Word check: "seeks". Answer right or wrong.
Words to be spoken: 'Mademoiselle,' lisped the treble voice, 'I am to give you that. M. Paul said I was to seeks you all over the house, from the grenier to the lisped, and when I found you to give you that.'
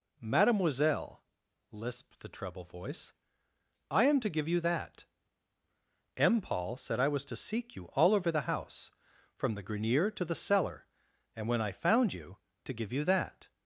wrong